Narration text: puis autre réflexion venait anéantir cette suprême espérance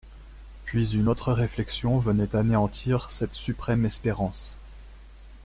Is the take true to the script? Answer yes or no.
no